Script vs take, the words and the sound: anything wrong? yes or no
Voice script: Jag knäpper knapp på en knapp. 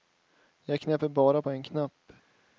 yes